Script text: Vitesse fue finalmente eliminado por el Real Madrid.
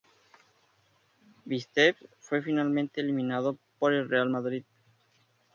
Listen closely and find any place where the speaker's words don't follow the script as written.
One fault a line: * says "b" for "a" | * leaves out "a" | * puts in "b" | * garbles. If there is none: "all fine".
all fine